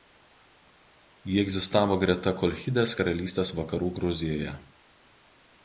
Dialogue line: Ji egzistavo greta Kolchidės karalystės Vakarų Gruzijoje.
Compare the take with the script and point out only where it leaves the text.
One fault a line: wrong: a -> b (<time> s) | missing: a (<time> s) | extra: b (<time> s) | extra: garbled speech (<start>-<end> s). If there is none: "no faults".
no faults